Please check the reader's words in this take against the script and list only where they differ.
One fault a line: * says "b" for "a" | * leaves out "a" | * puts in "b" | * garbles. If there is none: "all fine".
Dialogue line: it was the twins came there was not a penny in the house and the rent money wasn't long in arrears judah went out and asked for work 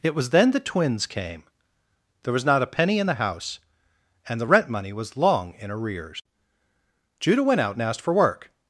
* puts in "then"
* says "was" for "wasn't"